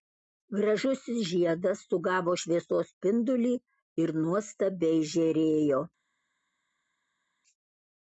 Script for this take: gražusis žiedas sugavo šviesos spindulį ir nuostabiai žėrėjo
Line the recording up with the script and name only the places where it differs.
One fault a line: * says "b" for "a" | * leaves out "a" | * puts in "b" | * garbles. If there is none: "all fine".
all fine